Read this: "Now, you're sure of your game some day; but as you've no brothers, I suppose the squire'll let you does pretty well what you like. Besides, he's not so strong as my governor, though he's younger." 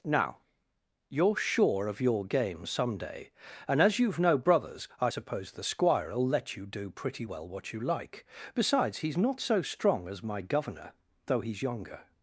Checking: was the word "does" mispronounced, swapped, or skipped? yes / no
yes